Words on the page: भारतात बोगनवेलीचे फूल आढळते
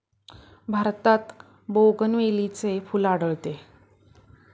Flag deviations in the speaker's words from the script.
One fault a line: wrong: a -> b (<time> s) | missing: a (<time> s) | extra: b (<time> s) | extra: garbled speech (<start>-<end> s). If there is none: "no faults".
no faults